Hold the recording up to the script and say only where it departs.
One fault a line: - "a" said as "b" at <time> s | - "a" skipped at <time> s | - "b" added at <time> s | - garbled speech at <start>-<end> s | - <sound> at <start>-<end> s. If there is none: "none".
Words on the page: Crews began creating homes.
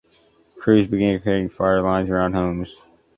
- "fire lines around" added at 1.5 s